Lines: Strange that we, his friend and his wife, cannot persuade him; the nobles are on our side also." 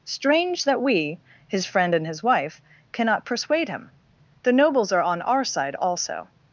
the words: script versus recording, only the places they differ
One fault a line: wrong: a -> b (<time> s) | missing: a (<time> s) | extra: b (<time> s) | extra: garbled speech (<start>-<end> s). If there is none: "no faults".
no faults